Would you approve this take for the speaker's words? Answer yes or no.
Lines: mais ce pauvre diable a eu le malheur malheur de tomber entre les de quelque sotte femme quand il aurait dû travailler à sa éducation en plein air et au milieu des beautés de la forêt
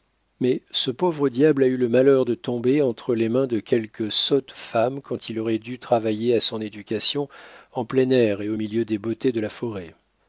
no